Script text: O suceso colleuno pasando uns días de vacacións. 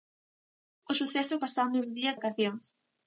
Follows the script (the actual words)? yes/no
no